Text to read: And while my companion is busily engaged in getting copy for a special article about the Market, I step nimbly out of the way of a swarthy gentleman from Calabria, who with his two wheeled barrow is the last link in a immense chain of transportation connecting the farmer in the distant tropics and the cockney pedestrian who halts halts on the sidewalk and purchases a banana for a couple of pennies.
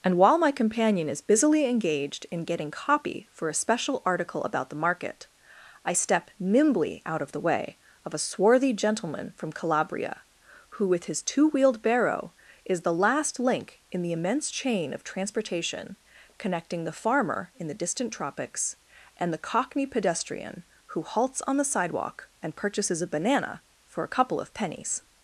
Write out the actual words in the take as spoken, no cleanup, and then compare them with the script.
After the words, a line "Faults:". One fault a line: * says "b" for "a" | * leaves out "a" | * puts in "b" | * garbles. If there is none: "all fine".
And while my companion is busily engaged in getting copy for a special article about the Market, I step nimbly out of the way of a swarthy gentleman from Calabria, who with his two wheeled barrow is the last link in the immense chain of transportation connecting the farmer in the distant tropics and the cockney pedestrian who halts on the sidewalk and purchases a banana for a couple of pennies.
Faults:
* says "the" for "a"
* leaves out "halts"